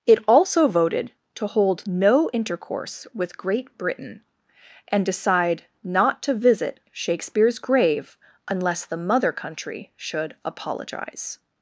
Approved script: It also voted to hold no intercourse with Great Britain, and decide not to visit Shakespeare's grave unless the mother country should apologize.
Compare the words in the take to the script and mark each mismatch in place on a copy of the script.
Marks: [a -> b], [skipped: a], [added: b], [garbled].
It also voted to hold no intercourse with Great Britain, and decide not to visit Shakespeare's grave unless the mother country should apologize.